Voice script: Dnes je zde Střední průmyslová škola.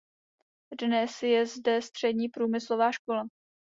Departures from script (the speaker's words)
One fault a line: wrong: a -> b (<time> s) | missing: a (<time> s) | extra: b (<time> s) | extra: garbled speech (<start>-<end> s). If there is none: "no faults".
no faults